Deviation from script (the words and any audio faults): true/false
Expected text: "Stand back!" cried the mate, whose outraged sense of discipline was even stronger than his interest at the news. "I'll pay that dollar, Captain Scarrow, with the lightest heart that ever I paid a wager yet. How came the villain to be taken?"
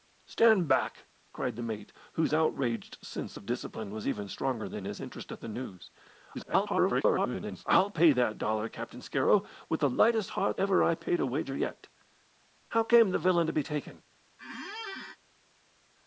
true